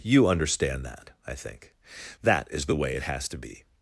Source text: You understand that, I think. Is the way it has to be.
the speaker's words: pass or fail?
fail